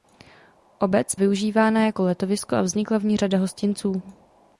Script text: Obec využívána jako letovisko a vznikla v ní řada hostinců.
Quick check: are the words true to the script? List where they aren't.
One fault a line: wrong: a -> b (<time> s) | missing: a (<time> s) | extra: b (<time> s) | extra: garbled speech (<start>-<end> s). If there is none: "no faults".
no faults